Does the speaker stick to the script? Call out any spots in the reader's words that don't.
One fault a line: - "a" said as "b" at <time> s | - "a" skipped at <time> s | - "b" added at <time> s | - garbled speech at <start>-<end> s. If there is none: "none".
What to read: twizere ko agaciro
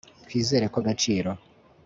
none